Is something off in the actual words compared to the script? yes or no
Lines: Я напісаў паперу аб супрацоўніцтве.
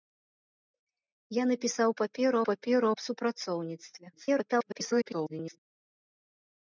yes